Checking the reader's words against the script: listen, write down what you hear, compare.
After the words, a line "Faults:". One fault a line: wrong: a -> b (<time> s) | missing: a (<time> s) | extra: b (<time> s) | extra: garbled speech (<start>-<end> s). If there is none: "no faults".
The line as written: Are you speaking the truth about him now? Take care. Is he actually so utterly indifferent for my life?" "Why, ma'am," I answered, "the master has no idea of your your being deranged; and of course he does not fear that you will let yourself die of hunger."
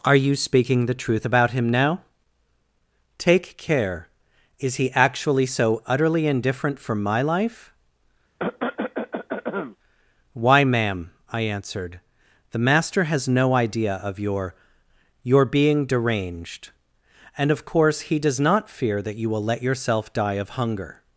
Are you speaking the truth about him now? Take care. Is he actually so utterly indifferent for my life?" "Why, ma'am," I answered, "the master has no idea of your your being deranged; and of course he does not fear that you will let yourself die of hunger."
Faults:
no faults